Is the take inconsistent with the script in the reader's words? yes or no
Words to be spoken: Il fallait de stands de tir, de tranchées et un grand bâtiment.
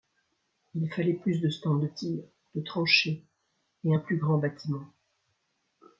yes